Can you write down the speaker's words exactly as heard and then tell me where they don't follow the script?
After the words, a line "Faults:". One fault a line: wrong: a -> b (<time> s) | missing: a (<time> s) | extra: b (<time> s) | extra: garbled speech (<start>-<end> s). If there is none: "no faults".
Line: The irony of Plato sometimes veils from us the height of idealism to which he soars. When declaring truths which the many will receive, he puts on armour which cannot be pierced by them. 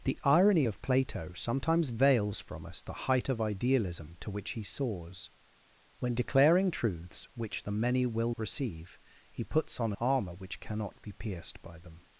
The irony of Plato sometimes veils from us the height of idealism to which he soars. When declaring truths which the many will receive, he puts on armour which cannot be pierced by them.
Faults:
no faults